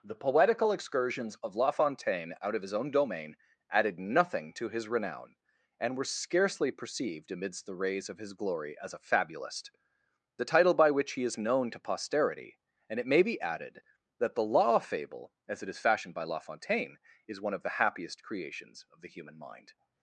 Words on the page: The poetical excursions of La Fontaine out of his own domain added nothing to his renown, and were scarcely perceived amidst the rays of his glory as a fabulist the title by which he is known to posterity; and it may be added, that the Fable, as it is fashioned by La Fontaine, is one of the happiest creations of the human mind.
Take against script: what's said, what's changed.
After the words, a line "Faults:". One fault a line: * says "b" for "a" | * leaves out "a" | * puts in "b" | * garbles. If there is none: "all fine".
The poetical excursions of La Fontaine out of his own domain added nothing to his renown, and were scarcely perceived amidst the rays of his glory as a fabulist the title by which he is known to posterity; and it may be added, that the law Fable, as it is fashioned by La Fontaine, is one of the happiest creations of the human mind.
Faults:
* puts in "law"